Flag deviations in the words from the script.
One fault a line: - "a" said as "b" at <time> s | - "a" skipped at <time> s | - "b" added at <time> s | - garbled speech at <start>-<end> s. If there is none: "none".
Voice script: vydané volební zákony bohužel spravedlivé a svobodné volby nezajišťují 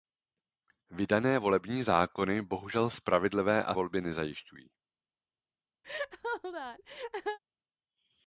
- "svobodné" skipped at 3.8 s